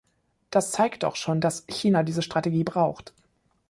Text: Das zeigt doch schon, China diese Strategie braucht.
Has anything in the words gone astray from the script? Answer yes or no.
yes